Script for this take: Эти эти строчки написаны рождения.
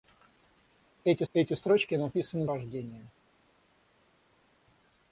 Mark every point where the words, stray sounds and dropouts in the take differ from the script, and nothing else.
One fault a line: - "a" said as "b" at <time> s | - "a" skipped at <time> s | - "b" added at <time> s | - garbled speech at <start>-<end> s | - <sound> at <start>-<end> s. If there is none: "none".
none